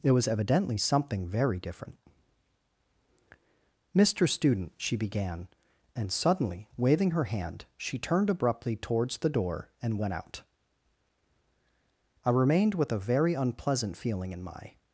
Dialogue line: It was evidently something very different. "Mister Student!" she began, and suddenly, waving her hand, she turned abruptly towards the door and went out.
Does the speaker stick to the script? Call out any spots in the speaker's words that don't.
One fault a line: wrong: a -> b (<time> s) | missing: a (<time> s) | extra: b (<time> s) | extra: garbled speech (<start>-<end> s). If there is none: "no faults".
extra: I remained with a very unpleasant feeling in my (12.2 s)